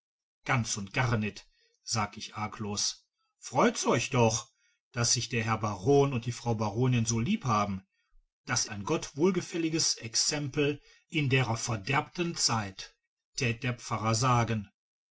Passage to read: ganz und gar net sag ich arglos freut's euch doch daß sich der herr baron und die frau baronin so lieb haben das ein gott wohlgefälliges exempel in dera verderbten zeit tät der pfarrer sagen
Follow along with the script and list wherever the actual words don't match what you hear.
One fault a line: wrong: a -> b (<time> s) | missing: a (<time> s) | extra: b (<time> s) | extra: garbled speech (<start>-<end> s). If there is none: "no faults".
no faults